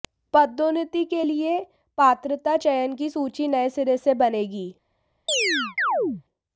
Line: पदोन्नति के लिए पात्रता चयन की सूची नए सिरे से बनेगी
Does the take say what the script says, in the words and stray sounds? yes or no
no